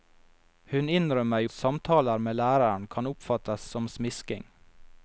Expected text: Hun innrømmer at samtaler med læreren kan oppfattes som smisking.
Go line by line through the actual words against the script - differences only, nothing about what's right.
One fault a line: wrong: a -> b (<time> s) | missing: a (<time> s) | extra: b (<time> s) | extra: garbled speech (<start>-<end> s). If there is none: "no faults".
no faults